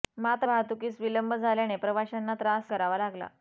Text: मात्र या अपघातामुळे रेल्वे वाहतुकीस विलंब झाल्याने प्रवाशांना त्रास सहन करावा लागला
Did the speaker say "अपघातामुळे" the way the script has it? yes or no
no